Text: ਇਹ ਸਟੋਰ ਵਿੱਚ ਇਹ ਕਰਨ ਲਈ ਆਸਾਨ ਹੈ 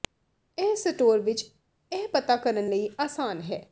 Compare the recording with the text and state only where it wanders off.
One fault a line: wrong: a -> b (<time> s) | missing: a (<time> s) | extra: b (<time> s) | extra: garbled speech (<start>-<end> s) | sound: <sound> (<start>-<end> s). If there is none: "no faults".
extra: ਪਤਾ (2.0 s)